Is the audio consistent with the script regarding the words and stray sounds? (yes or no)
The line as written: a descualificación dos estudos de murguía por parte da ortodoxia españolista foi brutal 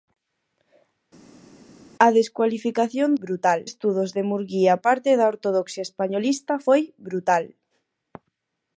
no